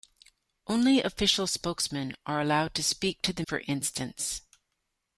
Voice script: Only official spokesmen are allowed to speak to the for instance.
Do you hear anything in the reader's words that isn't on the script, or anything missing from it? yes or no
no